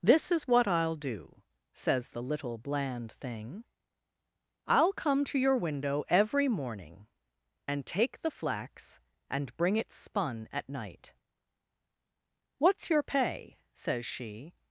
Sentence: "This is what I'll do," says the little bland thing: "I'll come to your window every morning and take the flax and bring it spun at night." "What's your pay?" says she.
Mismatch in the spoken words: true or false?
false